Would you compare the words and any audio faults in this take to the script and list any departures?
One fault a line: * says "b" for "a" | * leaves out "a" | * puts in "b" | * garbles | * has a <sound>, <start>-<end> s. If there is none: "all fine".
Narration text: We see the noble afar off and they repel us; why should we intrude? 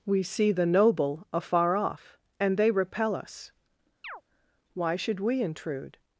* has a chirp, 4.0-4.2 s